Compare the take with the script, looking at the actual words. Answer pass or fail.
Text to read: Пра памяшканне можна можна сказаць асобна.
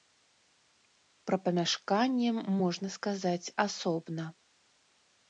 fail